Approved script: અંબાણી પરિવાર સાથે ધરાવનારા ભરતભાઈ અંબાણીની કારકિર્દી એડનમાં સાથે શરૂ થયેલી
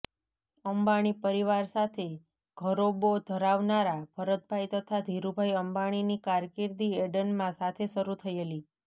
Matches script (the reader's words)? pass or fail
fail